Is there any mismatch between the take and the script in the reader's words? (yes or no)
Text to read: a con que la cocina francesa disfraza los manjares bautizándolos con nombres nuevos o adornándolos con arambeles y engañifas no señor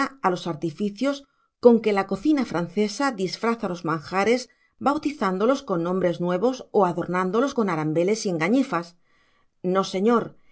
yes